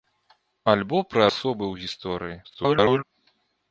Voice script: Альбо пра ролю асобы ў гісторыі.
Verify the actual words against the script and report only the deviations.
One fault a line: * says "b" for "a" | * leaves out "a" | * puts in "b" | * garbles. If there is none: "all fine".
* leaves out "ролю"
* garbles